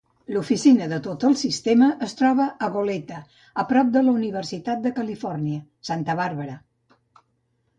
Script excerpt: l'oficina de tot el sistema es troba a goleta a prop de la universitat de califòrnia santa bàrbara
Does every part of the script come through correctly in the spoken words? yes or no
yes